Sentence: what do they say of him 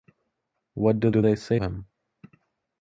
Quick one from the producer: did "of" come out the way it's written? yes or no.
no